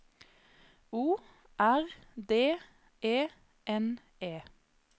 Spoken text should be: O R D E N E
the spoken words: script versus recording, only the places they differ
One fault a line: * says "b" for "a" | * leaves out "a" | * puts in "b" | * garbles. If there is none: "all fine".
all fine